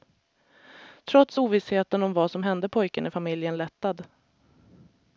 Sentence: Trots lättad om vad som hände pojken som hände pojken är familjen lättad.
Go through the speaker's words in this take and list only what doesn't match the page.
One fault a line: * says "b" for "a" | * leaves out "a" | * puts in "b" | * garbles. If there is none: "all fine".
* says "ovissheten" for "lättad"
* leaves out "som hände pojken"